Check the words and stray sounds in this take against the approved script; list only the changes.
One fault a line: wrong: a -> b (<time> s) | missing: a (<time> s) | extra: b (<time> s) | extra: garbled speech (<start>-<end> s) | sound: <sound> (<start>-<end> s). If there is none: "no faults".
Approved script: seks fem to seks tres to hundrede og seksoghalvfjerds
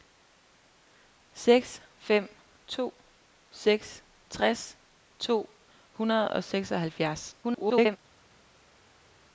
extra: garbled speech (7.4-8.0 s)